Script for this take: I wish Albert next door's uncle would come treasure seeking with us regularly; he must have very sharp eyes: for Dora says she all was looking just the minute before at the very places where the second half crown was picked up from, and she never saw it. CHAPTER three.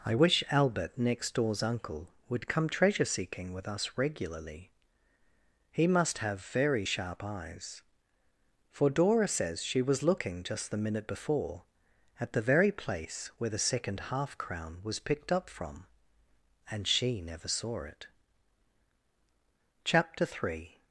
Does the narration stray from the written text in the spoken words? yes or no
yes